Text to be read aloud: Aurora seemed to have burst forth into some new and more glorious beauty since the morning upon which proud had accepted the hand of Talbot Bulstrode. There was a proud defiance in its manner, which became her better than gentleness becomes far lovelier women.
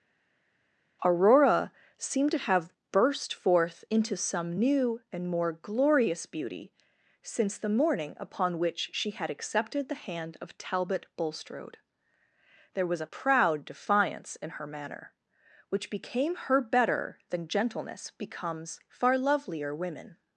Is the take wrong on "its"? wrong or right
wrong